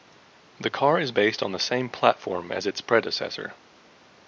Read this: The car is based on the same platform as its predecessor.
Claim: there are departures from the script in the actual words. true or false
false